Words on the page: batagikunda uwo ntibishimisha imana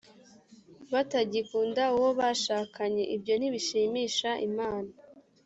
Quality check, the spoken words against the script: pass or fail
fail